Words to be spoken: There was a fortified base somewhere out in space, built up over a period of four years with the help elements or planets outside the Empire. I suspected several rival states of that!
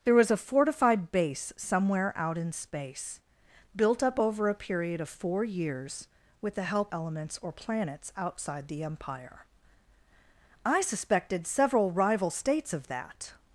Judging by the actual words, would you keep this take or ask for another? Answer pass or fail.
pass